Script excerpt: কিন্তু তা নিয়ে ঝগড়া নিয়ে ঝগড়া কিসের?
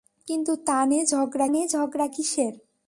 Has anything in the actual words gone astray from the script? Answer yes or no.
no